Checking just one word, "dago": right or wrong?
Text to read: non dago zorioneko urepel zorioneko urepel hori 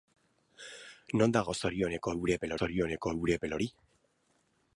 right